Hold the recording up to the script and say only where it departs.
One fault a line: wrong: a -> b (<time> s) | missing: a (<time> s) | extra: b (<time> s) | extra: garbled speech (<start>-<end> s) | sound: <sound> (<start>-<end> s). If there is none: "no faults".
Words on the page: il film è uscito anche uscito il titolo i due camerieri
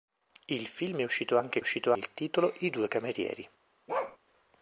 sound: bark (3.9-4.2 s)